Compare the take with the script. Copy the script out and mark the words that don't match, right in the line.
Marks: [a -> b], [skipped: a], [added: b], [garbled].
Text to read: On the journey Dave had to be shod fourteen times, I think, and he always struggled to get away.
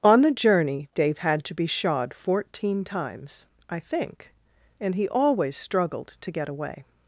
On the journey Dave had to be shod fourteen times, I think, and he always struggled to get away.